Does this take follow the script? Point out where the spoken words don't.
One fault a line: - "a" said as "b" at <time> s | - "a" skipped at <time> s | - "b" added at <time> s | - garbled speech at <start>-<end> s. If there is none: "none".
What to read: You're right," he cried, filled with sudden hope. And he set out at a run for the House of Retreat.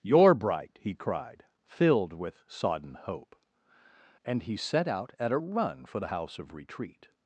- "right" said as "bright" at 0.3 s
- "sudden" said as "sodden" at 2.5 s